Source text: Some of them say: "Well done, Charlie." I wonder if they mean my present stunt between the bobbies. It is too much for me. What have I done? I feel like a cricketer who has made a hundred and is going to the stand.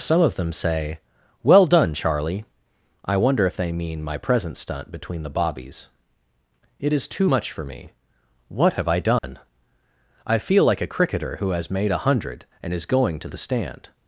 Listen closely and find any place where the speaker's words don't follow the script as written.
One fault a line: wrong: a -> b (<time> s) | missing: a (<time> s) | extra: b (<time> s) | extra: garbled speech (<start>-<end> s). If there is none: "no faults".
no faults